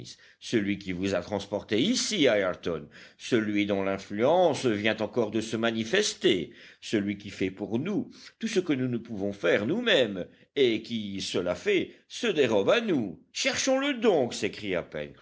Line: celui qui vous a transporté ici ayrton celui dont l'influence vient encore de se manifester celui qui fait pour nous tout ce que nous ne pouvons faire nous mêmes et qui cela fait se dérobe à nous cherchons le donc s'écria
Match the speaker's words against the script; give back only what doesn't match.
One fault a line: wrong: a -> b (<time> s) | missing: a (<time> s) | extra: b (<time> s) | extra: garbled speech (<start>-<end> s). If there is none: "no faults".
no faults